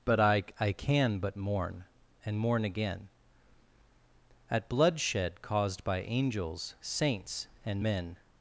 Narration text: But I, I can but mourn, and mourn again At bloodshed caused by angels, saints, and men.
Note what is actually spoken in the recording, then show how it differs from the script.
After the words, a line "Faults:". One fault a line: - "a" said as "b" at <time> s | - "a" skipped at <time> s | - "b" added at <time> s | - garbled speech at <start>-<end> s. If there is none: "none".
But I, I can but mourn, and mourn again At bloodshed caused by angels, saints, and men.
Faults:
none